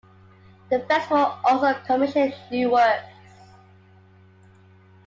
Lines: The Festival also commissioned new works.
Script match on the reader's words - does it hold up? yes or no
yes